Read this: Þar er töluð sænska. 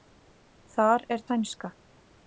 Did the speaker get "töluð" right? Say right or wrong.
wrong